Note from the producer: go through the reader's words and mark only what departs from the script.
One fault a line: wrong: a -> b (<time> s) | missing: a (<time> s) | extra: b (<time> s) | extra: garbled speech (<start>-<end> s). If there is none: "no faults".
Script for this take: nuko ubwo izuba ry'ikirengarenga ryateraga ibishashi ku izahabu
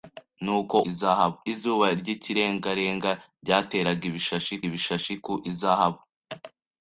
wrong: ubwo -> izahabu (0.9 s)
extra: ibishashi (4.7 s)